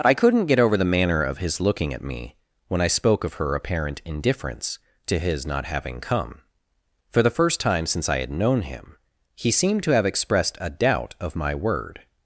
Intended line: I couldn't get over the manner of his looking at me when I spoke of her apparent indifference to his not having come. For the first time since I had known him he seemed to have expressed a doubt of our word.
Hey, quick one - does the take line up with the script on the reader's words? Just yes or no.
no